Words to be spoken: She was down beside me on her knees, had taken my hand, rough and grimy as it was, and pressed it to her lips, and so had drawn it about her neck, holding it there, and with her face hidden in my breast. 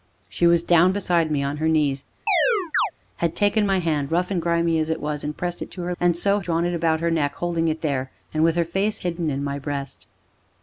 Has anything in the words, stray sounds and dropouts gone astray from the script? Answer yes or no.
yes